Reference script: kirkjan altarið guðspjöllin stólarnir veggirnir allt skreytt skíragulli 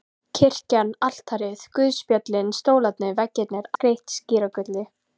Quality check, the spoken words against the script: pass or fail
fail